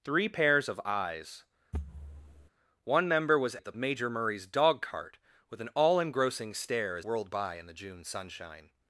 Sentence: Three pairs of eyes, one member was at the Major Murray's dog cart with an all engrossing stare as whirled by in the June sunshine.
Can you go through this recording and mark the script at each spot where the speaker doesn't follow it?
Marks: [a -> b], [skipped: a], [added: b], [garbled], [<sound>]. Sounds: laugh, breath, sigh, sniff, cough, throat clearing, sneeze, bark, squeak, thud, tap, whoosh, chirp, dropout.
Three pairs of eyes, [thud] one member was at the Major Murray's dog cart with an all engrossing stare as whirled by in the June sunshine.